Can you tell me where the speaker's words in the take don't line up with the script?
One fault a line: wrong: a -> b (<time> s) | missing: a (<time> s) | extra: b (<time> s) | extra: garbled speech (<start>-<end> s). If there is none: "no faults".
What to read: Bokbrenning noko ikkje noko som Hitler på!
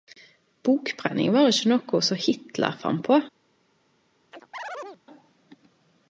wrong: noko -> var (1.4 s)
extra: fann (2.8 s)